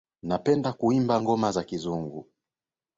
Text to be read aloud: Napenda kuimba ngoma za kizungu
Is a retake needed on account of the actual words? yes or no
no